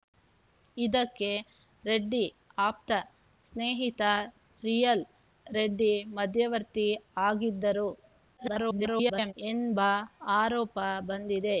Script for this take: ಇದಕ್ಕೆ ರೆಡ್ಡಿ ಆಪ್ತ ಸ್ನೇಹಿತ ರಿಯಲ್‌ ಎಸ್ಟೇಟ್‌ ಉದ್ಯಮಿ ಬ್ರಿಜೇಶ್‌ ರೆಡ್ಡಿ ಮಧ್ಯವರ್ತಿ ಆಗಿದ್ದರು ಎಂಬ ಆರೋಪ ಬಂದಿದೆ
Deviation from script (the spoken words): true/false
true